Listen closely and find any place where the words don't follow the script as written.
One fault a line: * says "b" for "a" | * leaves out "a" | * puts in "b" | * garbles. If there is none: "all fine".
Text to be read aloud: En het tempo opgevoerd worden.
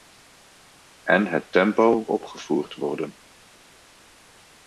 all fine